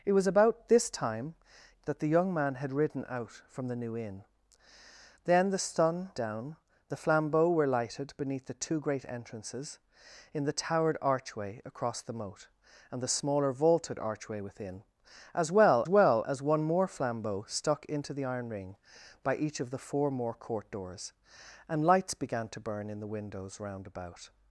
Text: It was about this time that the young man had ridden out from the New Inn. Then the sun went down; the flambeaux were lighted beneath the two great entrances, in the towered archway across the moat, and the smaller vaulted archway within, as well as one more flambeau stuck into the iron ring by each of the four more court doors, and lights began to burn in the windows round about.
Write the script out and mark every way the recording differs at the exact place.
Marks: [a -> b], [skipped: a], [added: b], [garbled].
It was about this time that the young man had ridden out from the New Inn. Then the sun [skipped: went] down; the flambeaux were lighted beneath the two great entrances, in the towered archway across the moat, and the smaller vaulted archway within, as well [added: well] as one more flambeau stuck into the iron ring by each of the four more court doors, and lights began to burn in the windows round about.